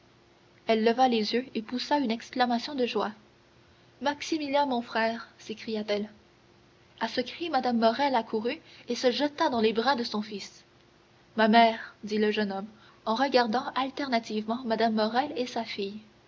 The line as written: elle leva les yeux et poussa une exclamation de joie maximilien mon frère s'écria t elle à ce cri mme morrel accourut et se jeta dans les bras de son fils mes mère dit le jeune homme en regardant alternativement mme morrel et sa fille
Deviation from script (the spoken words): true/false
true